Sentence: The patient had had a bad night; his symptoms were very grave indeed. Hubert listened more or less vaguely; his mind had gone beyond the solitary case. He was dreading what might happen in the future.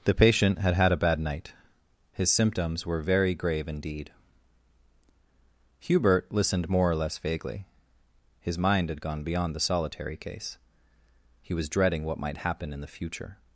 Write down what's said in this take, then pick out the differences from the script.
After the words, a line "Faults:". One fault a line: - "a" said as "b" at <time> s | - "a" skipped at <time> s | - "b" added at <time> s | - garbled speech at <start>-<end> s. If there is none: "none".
The patient had had a bad night; his symptoms were very grave indeed. Hubert listened more or less vaguely; his mind had gone beyond the solitary case. He was dreading what might happen in the future.
Faults:
none